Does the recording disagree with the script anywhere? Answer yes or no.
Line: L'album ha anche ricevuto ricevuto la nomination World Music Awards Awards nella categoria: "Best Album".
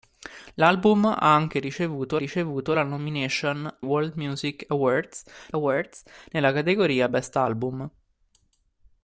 no